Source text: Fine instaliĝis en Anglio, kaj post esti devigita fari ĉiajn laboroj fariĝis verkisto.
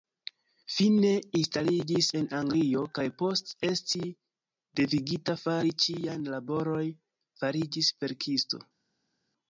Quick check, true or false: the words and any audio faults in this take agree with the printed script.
true